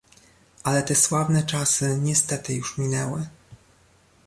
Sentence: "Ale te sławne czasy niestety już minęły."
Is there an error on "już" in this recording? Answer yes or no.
no